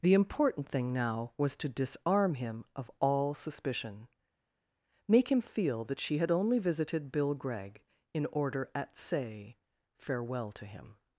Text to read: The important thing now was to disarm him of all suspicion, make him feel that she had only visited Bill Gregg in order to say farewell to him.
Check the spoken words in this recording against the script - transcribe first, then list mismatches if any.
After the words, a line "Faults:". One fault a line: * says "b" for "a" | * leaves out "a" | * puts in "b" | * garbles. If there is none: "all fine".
The important thing now was to disarm him of all suspicion, make him feel that she had only visited Bill Gregg in order at say farewell to him.
Faults:
* says "at" for "to"